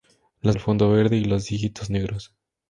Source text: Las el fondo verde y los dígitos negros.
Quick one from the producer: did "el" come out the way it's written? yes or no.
yes